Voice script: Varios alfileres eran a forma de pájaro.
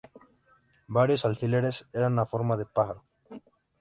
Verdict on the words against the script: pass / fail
pass